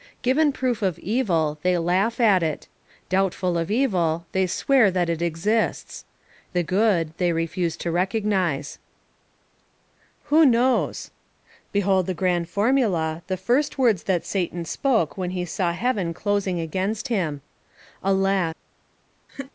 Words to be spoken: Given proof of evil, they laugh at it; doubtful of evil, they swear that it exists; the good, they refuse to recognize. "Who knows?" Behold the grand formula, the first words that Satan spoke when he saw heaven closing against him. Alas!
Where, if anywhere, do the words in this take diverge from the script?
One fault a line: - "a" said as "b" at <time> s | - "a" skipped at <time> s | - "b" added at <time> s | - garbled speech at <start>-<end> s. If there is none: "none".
none